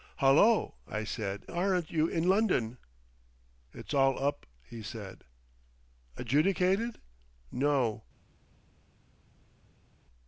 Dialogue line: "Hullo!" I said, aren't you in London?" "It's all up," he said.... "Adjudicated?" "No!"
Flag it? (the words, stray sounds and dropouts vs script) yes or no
no